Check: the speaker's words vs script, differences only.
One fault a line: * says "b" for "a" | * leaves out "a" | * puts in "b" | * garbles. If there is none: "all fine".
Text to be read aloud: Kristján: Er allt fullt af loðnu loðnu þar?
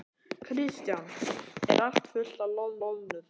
all fine